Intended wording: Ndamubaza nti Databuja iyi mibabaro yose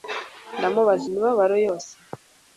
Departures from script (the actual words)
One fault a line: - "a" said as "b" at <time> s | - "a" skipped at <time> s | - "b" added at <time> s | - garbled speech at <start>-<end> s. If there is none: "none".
- "nti Databuja iyi" skipped at 1.1 s